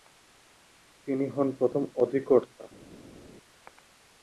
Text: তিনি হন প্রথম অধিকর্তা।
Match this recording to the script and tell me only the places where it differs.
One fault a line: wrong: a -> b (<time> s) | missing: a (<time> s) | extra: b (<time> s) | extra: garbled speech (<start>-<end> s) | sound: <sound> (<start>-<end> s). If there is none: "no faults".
no faults